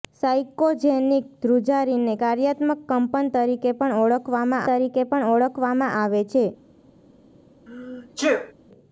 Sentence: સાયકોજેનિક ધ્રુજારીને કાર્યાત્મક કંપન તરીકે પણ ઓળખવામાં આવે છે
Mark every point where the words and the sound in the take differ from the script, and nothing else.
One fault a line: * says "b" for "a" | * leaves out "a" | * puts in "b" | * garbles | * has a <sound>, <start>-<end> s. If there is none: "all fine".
* puts in "તરીકે પણ ઓળખવામાં"
* has a sneeze, 7.7-8.5 s